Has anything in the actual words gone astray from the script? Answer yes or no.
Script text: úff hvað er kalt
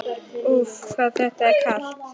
yes